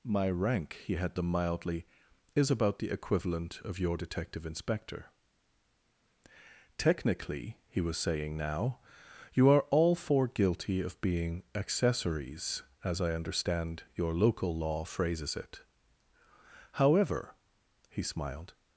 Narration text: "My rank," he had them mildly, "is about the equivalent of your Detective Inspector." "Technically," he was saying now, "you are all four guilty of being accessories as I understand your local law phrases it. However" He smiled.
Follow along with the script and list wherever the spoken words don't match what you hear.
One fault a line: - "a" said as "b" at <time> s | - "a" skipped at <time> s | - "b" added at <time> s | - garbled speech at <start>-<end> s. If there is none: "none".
none